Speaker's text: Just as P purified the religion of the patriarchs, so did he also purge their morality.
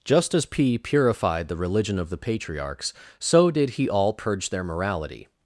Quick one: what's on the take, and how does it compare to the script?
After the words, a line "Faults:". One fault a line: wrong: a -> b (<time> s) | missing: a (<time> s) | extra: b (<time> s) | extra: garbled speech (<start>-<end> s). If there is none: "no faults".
Just as P purified the religion of the patriarchs, so did he all purge their morality.
Faults:
wrong: also -> all (3.9 s)